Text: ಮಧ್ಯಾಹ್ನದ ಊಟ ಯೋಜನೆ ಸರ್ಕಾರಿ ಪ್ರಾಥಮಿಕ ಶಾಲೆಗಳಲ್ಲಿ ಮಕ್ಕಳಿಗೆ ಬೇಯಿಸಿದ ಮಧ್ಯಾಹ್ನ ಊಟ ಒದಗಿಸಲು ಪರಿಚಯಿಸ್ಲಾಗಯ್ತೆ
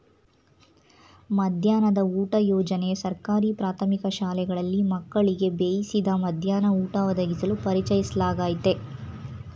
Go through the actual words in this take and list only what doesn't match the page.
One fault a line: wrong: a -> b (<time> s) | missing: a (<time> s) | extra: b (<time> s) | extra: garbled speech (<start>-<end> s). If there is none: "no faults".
no faults